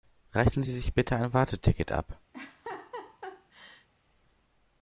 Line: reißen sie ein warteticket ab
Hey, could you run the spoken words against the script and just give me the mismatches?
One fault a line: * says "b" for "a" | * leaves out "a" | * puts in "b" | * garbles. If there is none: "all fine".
* puts in "sich bitte"